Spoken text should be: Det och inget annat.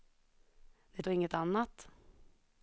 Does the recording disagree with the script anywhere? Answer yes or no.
no